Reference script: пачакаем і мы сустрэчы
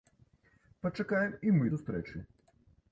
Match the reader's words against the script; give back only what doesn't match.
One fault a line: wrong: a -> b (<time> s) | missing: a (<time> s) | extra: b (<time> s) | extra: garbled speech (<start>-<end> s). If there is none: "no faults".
no faults